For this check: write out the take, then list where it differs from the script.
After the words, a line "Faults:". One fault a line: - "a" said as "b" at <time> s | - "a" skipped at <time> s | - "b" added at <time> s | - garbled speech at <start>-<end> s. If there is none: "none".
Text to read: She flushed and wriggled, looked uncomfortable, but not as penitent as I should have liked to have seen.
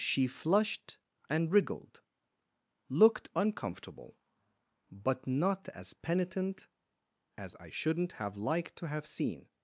She flushed and wriggled, looked uncomfortable, but not as penitent as I shouldn't have liked to have seen.
Faults:
- "should" said as "shouldn't" at 7.7 s